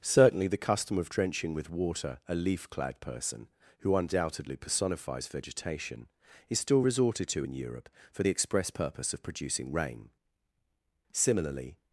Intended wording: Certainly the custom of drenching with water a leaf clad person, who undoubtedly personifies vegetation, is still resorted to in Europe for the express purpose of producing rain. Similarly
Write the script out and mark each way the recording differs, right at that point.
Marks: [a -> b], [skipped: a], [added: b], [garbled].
Certainly the custom of drenching with water a leaf clad person, who undoubtedly personifies vegetation, is still resorted to in Europe for the express purpose of producing rain. Similarly